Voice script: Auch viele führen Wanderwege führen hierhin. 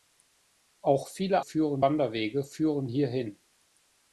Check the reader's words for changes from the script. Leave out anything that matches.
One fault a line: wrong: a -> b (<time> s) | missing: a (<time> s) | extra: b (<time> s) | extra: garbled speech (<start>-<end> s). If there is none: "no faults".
no faults